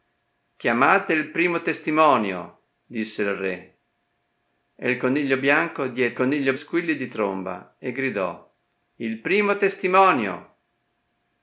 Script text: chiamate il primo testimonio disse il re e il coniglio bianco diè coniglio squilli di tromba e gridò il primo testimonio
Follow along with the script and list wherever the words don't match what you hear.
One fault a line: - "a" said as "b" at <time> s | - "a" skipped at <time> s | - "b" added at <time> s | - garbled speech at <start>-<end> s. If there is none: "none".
none